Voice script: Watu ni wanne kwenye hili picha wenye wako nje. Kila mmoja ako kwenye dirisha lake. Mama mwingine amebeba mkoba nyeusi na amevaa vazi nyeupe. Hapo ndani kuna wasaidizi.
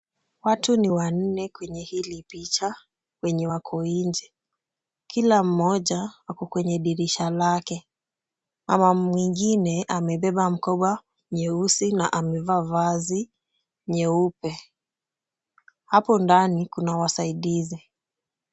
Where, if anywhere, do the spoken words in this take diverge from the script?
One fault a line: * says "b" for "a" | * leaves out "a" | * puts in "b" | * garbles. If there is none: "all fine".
all fine